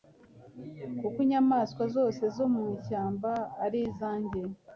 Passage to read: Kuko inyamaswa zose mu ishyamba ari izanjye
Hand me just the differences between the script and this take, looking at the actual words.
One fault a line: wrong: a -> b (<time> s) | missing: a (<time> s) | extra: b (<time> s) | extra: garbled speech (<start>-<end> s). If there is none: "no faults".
extra: zo (2.4 s)